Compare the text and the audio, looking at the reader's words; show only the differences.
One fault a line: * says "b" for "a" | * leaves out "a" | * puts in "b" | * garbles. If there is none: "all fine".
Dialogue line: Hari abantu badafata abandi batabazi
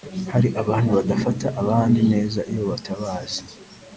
* puts in "neza iyo"